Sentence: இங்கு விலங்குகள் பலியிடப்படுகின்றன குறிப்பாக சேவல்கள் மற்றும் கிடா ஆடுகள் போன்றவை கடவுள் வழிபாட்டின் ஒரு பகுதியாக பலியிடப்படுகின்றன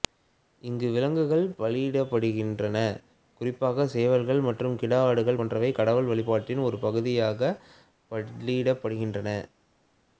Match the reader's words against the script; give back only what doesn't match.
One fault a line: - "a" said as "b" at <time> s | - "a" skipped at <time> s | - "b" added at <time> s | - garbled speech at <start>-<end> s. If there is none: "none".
none